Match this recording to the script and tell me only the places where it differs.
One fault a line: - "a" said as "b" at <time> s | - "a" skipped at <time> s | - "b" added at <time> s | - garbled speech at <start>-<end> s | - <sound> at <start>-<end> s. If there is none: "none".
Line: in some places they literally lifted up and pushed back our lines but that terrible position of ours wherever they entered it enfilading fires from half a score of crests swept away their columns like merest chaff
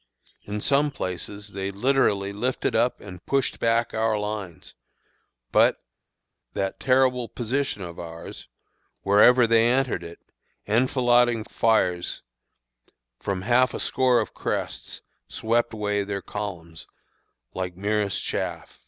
none